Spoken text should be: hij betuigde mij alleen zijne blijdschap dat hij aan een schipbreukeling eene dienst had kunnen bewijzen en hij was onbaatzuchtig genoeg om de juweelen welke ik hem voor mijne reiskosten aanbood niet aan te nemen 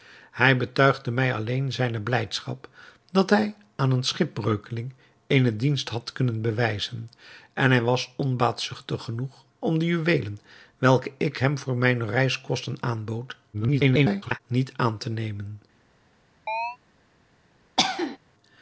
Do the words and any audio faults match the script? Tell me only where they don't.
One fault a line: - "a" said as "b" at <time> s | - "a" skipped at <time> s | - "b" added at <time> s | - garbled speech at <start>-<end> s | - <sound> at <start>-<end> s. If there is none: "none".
- garbled speech at 13.5-14.4 s
- chirp at 16.5-16.8 s
- cough at 17.8-18.2 s